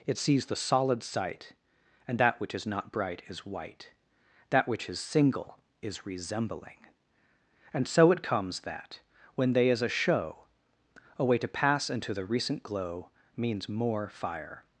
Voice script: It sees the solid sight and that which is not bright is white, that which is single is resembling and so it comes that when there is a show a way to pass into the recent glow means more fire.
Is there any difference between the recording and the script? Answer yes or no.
yes